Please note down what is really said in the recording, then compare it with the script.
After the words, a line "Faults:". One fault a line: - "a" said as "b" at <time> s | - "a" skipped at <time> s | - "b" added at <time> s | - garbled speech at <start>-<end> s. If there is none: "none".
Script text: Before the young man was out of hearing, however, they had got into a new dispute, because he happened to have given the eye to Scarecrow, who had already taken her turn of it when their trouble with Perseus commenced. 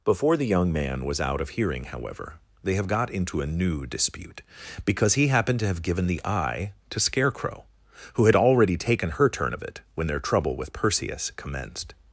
Before the young man was out of hearing, however, they have got into a new dispute, because he happened to have given the eye to Scarecrow, who had already taken her turn of it when their trouble with Perseus commenced.
Faults:
- "had" said as "have" at 2.7 s